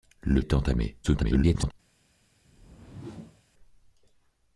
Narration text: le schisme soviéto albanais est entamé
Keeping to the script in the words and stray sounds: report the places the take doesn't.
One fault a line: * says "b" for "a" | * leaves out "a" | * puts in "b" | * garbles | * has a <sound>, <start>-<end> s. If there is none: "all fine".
* leaves out "schisme soviéto albanais"
* garbles
* has a whoosh, 2.4-3.4 s